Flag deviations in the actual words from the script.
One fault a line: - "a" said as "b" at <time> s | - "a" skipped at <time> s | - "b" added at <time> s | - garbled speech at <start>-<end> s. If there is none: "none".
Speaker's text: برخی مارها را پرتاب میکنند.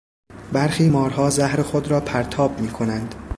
- "زهر خود" added at 1.3 s